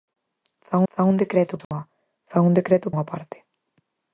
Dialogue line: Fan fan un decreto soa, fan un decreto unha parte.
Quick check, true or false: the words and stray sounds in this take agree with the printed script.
false